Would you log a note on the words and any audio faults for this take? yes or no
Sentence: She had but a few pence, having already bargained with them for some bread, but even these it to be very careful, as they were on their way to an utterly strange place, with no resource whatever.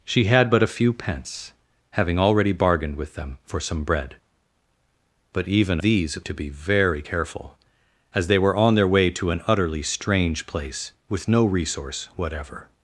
no